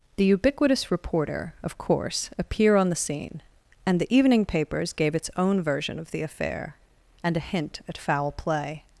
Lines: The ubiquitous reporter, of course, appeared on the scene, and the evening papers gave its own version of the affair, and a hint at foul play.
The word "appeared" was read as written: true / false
false